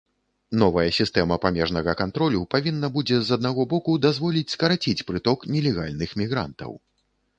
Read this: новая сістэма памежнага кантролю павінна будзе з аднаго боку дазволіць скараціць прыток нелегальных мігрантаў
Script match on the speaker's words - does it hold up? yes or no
yes